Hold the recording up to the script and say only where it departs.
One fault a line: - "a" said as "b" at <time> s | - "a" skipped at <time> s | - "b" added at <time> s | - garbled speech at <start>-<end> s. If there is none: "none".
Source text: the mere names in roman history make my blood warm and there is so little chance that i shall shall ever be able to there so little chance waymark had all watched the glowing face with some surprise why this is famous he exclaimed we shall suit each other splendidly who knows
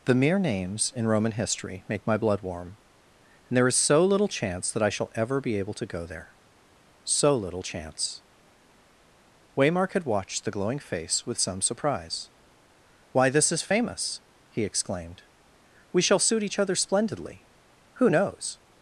- "shall" skipped at 5.1 s
- "go" added at 5.8 s
- "all" skipped at 10.0 s